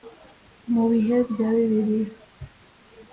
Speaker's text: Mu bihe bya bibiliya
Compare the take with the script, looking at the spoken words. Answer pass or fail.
pass